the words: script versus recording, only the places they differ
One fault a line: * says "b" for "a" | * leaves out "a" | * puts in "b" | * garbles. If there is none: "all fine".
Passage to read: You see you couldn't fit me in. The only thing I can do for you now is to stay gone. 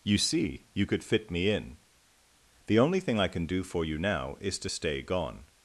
* says "could" for "couldn't"